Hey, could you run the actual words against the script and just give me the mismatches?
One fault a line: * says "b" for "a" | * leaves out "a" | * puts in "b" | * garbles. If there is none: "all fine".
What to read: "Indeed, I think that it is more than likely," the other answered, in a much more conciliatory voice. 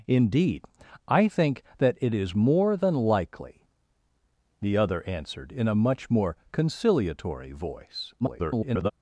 * garbles